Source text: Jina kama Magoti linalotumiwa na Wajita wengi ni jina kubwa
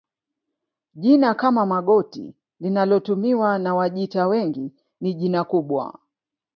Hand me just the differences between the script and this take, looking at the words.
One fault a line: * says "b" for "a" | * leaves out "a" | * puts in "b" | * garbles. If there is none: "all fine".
all fine